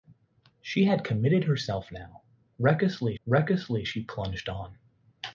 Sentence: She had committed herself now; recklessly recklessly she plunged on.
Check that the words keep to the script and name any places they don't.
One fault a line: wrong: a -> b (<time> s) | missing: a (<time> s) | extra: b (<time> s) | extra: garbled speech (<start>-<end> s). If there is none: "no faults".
no faults